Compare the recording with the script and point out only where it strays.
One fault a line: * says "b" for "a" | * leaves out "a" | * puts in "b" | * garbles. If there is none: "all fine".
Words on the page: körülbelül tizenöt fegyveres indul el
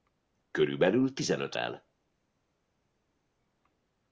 * leaves out "fegyveres indul"